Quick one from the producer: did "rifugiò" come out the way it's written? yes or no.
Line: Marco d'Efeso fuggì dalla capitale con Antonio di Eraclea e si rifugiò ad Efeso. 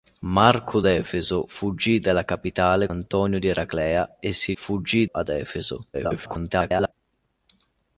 no